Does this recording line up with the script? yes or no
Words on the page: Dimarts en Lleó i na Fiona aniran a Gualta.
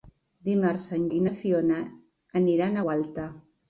no